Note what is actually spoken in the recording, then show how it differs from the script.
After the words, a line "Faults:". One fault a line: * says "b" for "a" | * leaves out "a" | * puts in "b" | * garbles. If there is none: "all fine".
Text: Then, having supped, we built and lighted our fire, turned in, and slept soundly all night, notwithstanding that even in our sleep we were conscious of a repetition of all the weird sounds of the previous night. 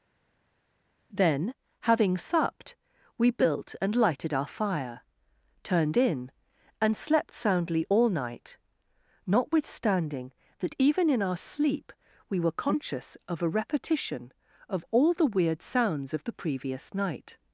Then, having supped, we built and lighted our fire, turned in, and slept soundly all night, notwithstanding that even in our sleep we were conscious of a repetition of all the weird sounds of the previous night.
Faults:
all fine